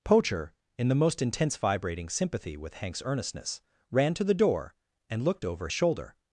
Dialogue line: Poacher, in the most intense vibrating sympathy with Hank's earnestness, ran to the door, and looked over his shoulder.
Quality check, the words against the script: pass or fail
fail